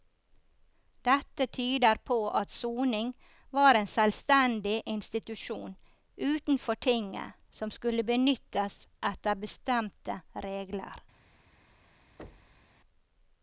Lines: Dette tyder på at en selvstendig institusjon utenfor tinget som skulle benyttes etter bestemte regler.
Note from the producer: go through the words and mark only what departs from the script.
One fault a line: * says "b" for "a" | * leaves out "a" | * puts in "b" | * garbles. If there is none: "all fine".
* puts in "soning var"